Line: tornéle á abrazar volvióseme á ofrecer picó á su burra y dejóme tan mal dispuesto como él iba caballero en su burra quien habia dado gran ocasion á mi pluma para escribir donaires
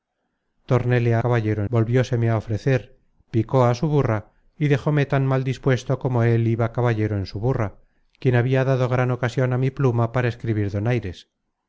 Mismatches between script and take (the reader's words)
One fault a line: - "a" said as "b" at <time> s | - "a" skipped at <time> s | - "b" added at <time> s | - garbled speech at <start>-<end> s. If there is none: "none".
- "abrazar" said as "caballero" at 1.2 s